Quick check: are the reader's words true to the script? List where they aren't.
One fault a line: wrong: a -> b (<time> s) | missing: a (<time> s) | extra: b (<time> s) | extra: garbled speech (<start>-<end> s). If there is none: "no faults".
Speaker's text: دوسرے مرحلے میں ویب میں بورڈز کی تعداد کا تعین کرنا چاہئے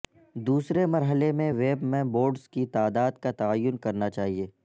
no faults